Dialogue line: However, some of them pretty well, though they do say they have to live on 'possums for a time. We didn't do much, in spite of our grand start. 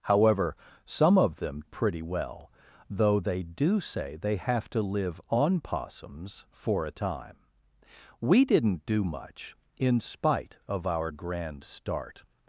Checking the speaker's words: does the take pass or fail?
pass